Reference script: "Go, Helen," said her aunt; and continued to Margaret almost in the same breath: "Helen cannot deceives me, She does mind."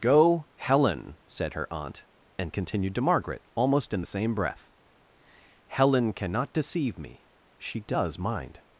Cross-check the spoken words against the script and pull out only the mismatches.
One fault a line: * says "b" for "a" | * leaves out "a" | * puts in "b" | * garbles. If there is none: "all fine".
* says "deceive" for "deceives"